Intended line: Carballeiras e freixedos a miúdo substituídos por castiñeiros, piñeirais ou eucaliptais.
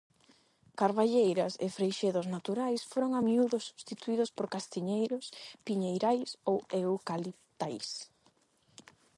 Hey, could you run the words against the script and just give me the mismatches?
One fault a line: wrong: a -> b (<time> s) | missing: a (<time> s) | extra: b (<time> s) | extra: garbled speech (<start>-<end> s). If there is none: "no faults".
extra: naturais foron (2.4 s)